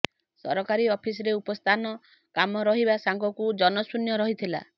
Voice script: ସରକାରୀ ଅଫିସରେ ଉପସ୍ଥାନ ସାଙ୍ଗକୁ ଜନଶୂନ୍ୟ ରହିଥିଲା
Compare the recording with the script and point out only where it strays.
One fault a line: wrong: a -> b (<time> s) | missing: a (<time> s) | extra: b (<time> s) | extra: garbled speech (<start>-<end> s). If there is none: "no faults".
extra: କମ ରହିବା (2.3 s)